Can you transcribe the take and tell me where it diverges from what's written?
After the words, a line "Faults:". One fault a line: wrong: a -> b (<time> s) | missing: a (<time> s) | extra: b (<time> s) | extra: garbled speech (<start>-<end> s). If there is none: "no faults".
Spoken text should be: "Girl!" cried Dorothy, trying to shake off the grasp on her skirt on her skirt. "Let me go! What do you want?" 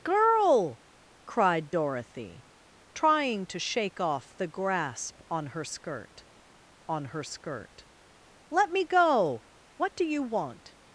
"Girl!" cried Dorothy, trying to shake off the grasp on her skirt on her skirt. "Let me go! What do you want?"
Faults:
no faults